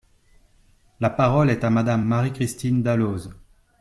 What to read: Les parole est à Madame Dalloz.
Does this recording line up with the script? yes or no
no